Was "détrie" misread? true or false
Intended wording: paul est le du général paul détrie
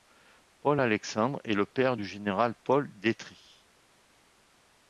false